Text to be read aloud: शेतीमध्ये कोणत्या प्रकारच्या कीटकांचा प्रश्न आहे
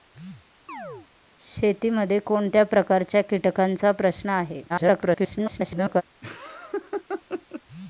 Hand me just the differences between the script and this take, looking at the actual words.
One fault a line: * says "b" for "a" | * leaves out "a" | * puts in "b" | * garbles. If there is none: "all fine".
* garbles